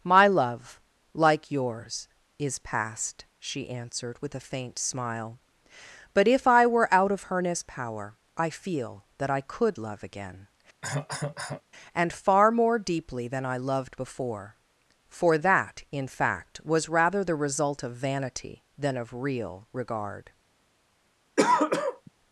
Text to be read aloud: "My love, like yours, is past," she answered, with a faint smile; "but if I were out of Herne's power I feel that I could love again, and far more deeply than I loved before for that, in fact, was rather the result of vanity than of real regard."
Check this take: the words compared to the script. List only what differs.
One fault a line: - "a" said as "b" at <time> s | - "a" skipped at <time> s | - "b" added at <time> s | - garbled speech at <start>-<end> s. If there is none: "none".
none